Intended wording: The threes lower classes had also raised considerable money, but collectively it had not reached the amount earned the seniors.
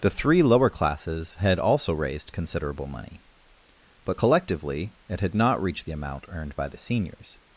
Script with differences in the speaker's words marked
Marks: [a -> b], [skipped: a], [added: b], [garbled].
The [threes -> three] lower classes had also raised considerable money, but collectively it had not reached the amount earned [added: by] the seniors.